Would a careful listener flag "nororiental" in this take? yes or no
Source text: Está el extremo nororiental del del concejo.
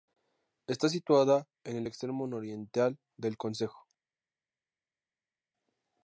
no